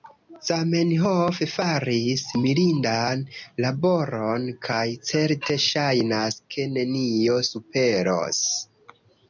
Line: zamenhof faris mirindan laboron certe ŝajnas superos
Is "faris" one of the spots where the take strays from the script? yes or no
no